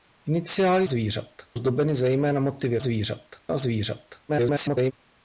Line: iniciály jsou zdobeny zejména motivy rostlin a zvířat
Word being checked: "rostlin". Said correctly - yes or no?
no